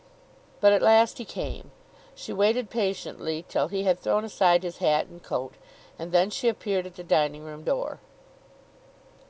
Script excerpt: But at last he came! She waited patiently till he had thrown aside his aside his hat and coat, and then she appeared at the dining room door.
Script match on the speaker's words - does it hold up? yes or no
no